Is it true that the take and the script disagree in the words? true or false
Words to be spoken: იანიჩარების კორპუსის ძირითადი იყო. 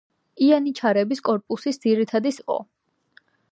false